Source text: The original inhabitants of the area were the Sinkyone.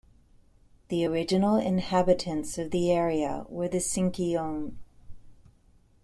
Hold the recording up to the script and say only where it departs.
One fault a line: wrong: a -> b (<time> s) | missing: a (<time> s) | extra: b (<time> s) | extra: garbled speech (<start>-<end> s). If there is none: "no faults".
no faults